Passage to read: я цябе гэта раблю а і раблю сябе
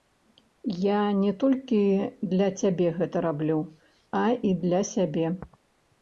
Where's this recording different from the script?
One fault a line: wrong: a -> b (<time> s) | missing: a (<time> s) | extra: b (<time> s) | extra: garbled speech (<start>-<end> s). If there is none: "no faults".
extra: не толькі для (1.2 s)
wrong: раблю -> для (4.7 s)